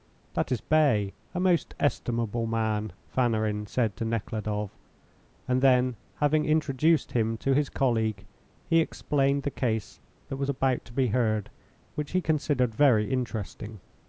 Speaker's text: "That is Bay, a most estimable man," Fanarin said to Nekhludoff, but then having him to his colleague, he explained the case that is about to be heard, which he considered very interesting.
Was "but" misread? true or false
true